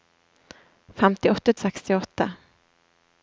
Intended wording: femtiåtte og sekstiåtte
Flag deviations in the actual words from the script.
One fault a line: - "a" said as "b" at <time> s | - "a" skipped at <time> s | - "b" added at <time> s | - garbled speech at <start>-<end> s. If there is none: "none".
none